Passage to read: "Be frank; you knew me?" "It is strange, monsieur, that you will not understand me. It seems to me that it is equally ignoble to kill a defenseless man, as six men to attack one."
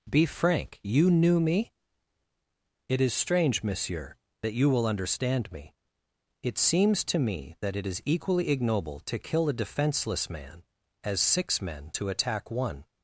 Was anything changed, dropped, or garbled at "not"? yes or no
yes